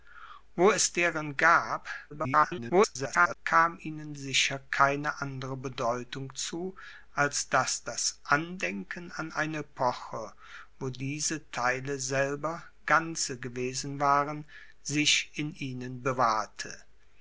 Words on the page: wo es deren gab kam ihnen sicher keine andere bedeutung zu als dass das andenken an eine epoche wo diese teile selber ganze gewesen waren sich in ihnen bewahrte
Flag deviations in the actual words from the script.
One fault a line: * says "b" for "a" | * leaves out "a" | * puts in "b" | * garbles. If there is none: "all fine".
* garbles